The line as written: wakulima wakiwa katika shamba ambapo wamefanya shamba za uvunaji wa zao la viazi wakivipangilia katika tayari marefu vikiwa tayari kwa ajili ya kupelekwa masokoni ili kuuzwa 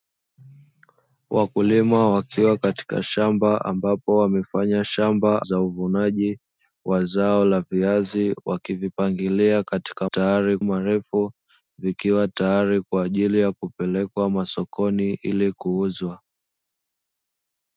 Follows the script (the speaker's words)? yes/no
yes